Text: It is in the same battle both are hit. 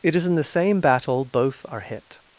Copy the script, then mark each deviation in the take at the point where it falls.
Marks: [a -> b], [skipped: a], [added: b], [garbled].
It is in the same battle both are hit.